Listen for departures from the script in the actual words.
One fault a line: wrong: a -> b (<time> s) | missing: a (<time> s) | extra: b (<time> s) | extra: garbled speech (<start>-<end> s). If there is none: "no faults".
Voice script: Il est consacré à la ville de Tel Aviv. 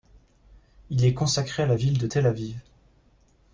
no faults